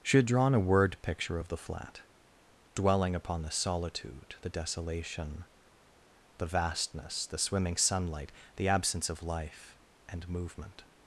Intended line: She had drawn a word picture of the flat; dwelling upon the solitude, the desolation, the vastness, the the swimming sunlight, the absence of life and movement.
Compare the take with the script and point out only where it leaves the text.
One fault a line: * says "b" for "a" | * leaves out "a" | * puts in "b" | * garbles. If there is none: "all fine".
* leaves out "the"